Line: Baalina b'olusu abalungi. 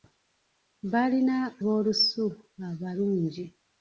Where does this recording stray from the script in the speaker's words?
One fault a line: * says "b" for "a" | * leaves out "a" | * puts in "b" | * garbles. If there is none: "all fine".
all fine